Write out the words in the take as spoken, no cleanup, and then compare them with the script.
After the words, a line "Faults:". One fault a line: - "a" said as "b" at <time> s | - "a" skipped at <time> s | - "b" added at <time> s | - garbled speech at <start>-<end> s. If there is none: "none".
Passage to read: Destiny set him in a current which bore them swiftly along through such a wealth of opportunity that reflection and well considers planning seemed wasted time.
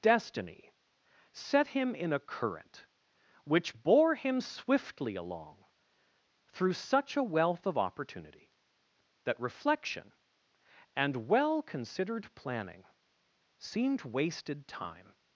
Destiny set him in a current which bore him swiftly along through such a wealth of opportunity that reflection and well considered planning seemed wasted time.
Faults:
- "them" said as "him" at 4.2 s
- "considers" said as "considered" at 11.6 s